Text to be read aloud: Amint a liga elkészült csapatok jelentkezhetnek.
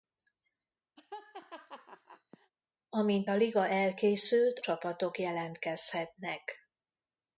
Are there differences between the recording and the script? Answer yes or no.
no